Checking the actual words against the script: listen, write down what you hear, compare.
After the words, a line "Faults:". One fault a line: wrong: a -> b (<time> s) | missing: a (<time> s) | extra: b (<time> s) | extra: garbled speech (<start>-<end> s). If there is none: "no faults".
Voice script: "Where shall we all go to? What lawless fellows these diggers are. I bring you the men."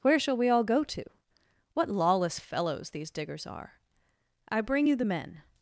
"Where shall we all go to? What lawless fellows these diggers are. I bring you the men."
Faults:
no faults